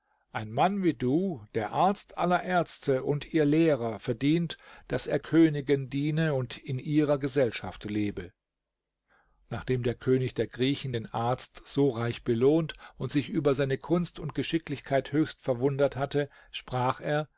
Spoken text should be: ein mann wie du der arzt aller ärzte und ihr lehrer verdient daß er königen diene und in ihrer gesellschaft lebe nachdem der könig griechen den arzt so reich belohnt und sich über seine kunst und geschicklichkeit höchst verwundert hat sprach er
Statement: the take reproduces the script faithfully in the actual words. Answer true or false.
false